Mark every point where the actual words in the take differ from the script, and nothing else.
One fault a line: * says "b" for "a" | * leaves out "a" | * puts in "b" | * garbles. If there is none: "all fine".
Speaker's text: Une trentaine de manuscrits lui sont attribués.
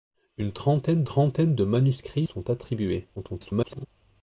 * puts in "trentaine"
* leaves out "lui"
* garbles